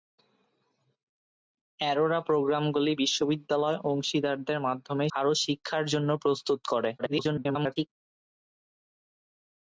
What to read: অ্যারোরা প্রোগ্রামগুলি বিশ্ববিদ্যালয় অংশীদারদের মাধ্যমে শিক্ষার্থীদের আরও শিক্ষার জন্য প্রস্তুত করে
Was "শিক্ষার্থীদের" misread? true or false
true